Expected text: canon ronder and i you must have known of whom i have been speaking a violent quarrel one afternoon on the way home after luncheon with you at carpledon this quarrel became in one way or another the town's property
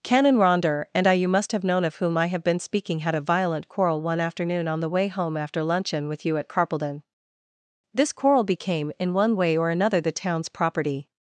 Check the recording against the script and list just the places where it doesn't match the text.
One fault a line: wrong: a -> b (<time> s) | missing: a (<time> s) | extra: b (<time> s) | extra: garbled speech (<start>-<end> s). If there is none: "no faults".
extra: had (3.0 s)